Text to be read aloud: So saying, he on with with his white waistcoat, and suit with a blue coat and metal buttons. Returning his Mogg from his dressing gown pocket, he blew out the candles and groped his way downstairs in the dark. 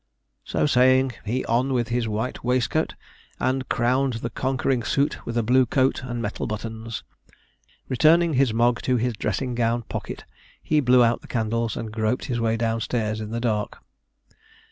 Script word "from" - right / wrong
wrong